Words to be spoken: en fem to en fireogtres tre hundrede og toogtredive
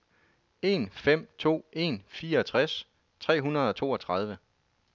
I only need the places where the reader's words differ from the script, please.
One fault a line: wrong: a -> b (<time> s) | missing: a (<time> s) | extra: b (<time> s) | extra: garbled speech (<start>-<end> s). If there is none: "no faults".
no faults